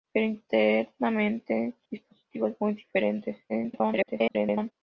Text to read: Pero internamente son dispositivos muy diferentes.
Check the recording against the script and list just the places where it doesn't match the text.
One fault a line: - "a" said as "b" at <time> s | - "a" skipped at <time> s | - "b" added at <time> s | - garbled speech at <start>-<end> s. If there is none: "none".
- "son" skipped at 1.7 s
- garbled speech at 3.5-4.7 s